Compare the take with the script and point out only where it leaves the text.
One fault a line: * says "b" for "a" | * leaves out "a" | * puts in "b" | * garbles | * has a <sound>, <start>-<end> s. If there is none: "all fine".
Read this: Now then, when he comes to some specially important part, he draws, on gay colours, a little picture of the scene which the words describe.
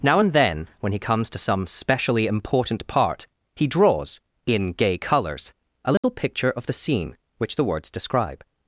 * puts in "and"
* says "in" for "on"
* has a dropout, 6.0-6.0 s